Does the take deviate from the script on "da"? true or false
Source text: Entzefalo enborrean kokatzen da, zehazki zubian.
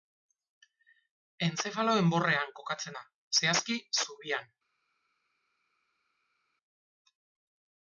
false